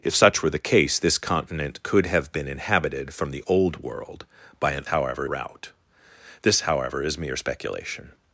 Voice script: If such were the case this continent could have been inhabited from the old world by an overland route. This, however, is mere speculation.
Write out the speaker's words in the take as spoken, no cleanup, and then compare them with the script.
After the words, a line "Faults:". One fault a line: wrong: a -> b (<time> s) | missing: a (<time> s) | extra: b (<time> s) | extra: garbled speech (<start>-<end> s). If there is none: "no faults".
If such were the case this continent could have been inhabited from the old world by an however route. This, however, is mere speculation.
Faults:
wrong: overland -> however (4.9 s)